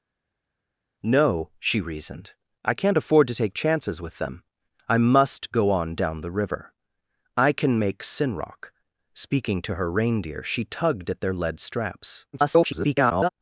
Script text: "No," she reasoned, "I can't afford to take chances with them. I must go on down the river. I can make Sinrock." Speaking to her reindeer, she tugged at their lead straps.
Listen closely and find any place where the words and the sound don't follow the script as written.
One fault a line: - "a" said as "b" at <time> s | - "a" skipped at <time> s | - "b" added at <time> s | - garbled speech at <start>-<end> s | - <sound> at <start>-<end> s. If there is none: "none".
- garbled speech at 12.3-13.3 s